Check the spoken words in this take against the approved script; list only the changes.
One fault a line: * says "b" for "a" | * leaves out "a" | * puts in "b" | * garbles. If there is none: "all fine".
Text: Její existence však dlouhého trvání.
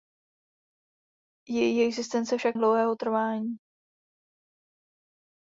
all fine